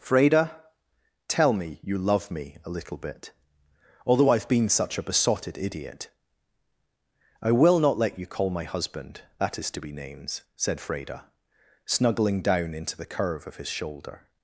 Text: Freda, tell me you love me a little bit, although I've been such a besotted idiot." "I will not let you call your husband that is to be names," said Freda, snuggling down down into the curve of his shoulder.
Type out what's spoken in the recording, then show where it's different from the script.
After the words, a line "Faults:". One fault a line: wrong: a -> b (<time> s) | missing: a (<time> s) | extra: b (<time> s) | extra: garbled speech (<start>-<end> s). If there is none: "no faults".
Freda, tell me you love me a little bit, although I've been such a besotted idiot." "I will not let you call my husband that is to be names," said Freda, snuggling down into the curve of his shoulder.
Faults:
wrong: your -> my (8.5 s)
missing: down (12.7 s)